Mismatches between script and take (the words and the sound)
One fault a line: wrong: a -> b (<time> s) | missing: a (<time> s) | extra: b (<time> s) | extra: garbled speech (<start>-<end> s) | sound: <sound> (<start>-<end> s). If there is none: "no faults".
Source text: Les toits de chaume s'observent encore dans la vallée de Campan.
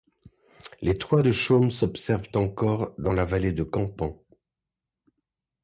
no faults